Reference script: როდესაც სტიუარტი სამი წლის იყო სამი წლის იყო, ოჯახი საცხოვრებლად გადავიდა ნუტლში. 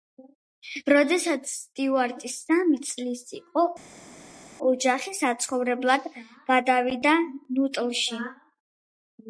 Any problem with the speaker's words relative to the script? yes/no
yes